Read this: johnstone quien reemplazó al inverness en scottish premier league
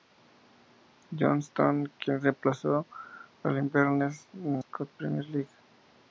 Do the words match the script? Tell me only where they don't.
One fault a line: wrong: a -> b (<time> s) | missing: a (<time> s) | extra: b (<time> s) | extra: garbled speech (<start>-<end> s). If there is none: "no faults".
no faults